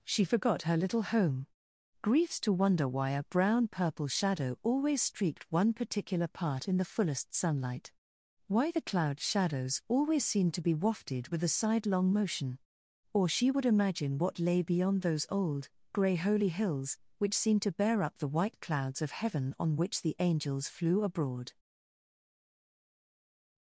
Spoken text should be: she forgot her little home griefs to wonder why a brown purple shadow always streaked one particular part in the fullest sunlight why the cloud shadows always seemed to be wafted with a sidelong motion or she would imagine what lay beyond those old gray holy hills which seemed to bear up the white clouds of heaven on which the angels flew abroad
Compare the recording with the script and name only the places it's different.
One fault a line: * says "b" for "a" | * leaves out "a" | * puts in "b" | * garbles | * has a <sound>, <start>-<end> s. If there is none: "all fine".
all fine